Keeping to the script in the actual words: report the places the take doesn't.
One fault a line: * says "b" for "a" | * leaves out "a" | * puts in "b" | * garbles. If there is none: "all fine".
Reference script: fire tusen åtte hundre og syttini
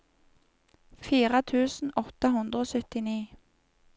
all fine